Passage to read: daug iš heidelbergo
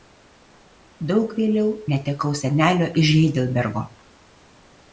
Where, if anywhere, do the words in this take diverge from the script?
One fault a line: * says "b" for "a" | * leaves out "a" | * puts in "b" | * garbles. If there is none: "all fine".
* puts in "vėliau netekau senelio"